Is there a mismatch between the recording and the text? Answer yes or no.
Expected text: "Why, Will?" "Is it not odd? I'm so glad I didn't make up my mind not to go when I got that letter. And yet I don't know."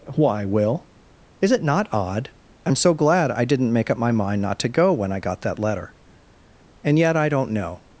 no